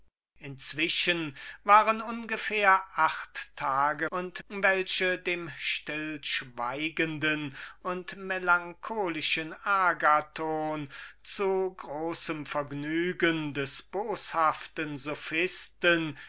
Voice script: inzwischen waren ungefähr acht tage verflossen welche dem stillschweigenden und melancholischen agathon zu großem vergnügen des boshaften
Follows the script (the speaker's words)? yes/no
no